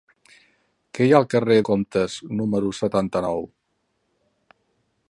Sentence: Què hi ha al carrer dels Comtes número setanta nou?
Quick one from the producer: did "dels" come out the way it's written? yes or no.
no